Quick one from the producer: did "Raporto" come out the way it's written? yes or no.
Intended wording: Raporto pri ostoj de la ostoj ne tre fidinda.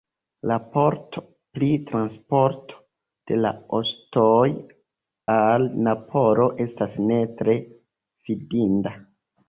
yes